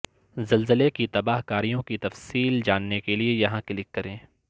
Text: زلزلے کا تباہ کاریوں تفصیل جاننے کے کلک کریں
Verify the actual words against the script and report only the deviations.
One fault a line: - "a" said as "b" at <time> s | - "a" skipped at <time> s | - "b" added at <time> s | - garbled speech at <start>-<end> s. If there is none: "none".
- "کا" said as "کی" at 0.9 s
- "کی" added at 1.8 s
- "لیے یہاں" added at 3.2 s